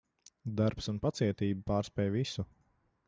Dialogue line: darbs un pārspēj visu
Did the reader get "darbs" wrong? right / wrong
right